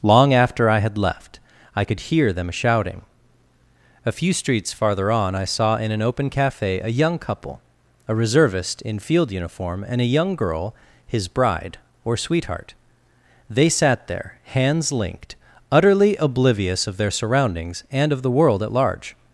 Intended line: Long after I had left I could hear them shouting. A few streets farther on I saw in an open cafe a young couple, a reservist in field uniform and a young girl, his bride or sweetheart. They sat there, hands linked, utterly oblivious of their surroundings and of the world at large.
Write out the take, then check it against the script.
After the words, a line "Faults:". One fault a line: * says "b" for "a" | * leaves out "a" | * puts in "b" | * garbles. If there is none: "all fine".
Long after I had left I could hear them shouting. A few streets farther on I saw in an open cafe a young couple, a reservist in field uniform and a young girl, his bride or sweetheart. They sat there, hands linked, utterly oblivious of their surroundings and of the world at large.
Faults:
all fine